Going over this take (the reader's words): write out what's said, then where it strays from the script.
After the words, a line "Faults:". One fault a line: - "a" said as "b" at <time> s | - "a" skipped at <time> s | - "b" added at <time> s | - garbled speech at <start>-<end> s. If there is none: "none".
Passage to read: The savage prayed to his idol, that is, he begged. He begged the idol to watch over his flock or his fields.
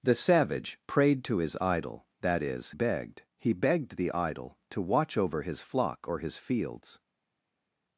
The savage prayed to his idol, that is, begged. He begged the idol to watch over his flock or his fields.
Faults:
- "he" skipped at 2.7 s